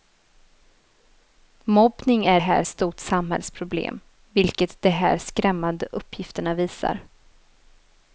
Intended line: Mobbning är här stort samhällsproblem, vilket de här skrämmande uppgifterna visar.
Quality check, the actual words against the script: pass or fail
pass